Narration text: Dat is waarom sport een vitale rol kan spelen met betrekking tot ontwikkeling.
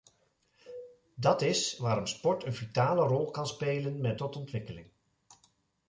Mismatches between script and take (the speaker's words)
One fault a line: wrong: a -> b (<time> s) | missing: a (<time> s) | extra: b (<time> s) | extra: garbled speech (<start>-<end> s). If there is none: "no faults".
missing: betrekking (4.2 s)